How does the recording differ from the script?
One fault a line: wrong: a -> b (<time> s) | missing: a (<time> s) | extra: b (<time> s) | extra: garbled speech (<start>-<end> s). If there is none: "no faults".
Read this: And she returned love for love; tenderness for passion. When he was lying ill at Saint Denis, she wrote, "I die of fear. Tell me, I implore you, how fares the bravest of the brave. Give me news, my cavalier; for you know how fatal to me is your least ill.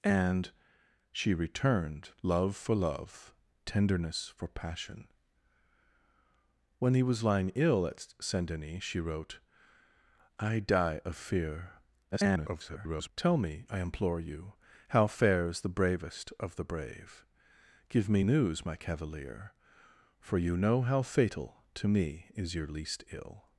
extra: garbled speech (12.1-13.1 s)